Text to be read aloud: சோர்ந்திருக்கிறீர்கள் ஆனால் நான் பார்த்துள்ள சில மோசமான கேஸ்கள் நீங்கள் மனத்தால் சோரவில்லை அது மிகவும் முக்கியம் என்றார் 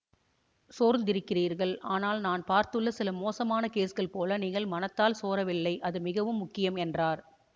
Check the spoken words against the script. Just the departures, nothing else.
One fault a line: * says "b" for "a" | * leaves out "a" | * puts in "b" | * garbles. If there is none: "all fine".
* puts in "போல"